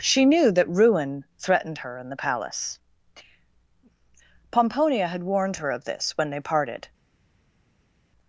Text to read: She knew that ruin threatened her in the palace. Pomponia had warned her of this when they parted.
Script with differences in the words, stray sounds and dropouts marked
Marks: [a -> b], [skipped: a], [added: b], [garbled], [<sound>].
She knew that ruin threatened her in the palace. Pomponia had warned her of this when they parted.